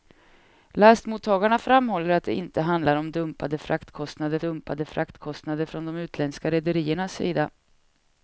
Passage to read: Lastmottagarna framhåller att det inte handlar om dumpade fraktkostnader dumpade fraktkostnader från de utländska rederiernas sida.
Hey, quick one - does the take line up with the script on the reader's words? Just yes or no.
yes